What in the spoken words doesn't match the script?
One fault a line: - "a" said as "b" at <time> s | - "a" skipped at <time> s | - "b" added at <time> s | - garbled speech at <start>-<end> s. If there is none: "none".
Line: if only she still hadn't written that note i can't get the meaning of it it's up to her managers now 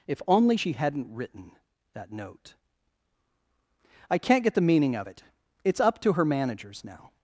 - "still" skipped at 0.7 s